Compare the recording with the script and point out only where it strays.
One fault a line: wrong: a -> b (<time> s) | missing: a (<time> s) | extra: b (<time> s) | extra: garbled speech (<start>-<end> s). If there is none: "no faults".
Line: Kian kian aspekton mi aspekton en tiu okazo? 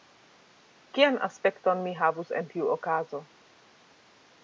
missing: kian (1.2 s)
wrong: aspekton -> havus (2.0 s)